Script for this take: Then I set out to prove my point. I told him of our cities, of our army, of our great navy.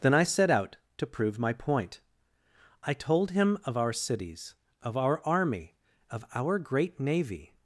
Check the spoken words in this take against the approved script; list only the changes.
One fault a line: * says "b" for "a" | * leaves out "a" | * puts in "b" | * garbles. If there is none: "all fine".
all fine